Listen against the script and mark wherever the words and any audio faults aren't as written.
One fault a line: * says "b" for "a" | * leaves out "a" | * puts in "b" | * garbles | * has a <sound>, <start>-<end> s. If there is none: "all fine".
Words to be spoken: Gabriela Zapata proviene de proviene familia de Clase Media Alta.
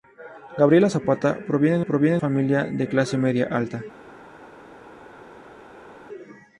all fine